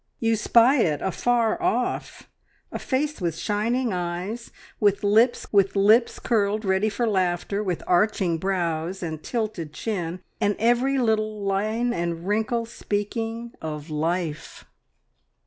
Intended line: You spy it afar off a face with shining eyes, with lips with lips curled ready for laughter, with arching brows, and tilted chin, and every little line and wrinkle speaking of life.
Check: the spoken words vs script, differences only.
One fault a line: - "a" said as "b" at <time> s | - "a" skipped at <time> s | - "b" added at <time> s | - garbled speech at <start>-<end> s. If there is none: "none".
none